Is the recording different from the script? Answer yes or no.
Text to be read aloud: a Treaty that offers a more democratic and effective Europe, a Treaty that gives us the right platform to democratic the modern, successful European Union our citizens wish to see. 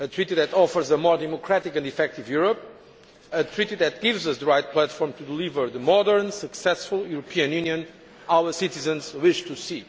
yes